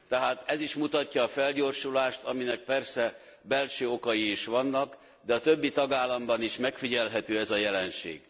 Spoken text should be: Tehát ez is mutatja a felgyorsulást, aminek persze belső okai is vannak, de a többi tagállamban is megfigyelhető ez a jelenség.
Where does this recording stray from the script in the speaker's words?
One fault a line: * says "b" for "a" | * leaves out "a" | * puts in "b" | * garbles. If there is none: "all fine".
all fine